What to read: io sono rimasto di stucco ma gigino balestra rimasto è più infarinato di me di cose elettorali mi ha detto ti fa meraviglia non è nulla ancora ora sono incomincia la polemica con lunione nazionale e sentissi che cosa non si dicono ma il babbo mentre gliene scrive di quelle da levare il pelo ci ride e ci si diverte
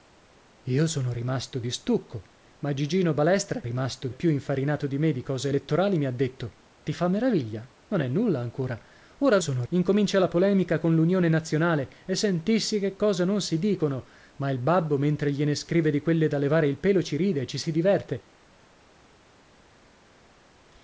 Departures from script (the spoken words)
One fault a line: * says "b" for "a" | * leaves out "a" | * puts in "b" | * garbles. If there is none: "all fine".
all fine